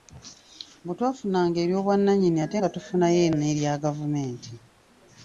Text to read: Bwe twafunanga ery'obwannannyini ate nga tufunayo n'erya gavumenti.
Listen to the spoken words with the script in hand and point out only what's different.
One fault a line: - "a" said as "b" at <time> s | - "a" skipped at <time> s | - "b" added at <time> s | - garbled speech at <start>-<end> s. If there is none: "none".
none